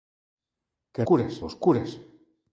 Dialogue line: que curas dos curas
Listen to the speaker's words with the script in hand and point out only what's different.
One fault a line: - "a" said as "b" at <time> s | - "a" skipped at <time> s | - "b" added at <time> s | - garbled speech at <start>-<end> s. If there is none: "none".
none